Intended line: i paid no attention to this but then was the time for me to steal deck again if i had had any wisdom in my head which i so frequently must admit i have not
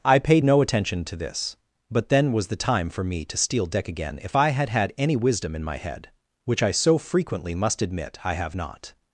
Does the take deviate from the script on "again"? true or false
false